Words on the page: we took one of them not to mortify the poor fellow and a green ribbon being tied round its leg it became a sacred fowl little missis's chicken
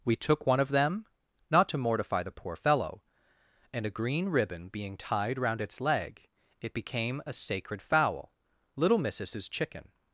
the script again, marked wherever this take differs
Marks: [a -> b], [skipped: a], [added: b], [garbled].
we took one of them not to mortify the poor fellow and a green ribbon being tied round its leg it became a sacred fowl little missis's chicken